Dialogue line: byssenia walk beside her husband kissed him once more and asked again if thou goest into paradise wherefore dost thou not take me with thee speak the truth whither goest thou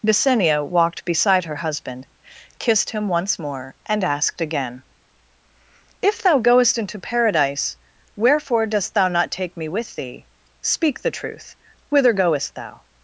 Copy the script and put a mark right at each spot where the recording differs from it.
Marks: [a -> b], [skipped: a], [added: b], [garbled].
byssenia [walk -> walked] beside her husband kissed him once more and asked again if thou goest into paradise wherefore dost thou not take me with thee speak the truth whither goest thou